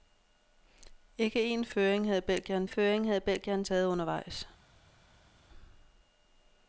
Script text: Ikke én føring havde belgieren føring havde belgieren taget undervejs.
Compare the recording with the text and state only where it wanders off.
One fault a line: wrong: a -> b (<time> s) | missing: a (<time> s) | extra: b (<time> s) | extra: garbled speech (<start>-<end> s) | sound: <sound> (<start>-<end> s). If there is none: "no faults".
no faults